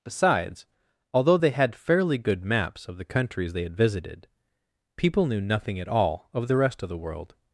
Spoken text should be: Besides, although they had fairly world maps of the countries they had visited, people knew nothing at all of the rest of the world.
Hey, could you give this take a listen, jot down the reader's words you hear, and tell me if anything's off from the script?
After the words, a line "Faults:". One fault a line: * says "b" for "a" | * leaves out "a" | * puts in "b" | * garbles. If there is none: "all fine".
Besides, although they had fairly good maps of the countries they had visited, people knew nothing at all of the rest of the world.
Faults:
* says "good" for "world"